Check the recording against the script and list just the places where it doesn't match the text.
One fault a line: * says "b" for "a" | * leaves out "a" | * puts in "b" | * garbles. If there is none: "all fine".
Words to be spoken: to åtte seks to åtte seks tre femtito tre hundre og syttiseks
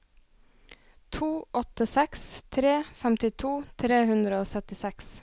* leaves out "to åtte seks"